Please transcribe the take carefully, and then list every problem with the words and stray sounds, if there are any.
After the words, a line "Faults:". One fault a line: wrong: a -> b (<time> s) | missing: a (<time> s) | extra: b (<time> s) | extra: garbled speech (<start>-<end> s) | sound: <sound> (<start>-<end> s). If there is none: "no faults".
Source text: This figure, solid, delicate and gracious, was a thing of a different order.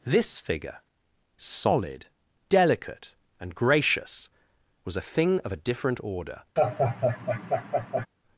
This figure, solid, delicate and gracious, was a thing of a different order.
Faults:
sound: laugh (6.6-8.1 s)